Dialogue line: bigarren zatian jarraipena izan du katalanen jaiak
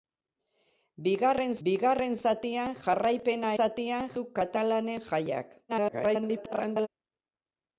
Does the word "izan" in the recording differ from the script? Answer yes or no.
yes